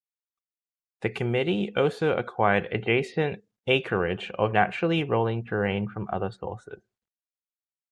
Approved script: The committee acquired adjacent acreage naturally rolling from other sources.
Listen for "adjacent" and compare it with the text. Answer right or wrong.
right